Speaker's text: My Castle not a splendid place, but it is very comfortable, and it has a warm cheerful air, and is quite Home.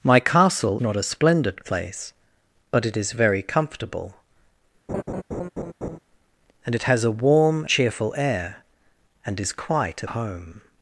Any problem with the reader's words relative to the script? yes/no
no